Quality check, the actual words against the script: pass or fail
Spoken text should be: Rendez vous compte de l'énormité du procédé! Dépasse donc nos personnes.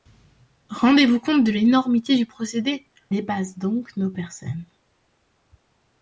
pass